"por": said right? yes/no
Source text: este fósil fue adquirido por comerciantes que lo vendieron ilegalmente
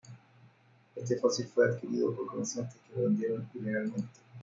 yes